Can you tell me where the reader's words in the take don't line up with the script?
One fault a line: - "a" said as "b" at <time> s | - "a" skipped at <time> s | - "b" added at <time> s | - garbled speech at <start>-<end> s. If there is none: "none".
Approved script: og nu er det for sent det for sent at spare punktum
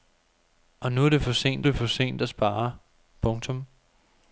none